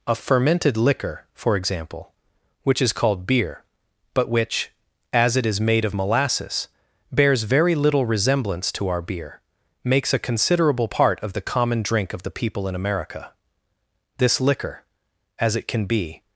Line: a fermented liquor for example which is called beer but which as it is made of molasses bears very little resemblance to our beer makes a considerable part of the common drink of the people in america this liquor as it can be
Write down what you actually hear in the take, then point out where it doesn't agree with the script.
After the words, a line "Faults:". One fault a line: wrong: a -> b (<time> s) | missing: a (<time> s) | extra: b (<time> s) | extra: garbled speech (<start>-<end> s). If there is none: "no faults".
a fermented liquor for example which is called beer but which as it is made of molasses bears very little resemblance to our beer makes a considerable part of the common drink of the people in america this liquor as it can be
Faults:
no faults